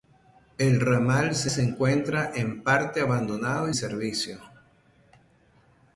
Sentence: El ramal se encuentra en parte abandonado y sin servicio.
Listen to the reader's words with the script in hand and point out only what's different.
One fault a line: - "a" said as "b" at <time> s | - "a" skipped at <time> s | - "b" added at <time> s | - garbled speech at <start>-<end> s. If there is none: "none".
- "se" added at 1.5 s
- "sin" skipped at 3.7 s